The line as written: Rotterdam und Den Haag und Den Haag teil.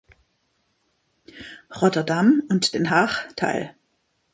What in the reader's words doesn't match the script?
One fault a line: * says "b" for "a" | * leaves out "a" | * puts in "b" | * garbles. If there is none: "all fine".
* leaves out "und Den Haag"